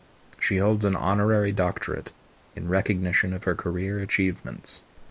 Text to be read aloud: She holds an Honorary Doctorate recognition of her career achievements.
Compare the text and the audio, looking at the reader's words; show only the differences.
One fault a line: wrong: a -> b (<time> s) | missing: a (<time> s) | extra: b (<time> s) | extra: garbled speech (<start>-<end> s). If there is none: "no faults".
extra: in (2.5 s)